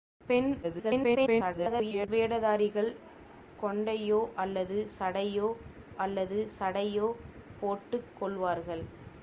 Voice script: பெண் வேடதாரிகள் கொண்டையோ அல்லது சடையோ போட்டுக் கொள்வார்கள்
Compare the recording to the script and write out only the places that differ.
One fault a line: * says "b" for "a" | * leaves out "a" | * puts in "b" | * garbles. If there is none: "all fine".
* garbles
* puts in "அல்லது சடையோ"